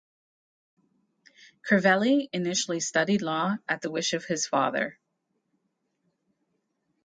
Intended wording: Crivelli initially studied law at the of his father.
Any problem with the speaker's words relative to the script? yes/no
yes